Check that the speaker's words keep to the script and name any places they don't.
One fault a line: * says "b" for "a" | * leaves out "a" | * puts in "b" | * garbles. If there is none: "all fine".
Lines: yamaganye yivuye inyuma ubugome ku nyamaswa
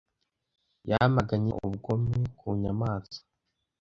* leaves out "yivuye inyuma"